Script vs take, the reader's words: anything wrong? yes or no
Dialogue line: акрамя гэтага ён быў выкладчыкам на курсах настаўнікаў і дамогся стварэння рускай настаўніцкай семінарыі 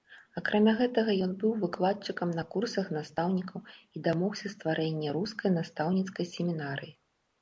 no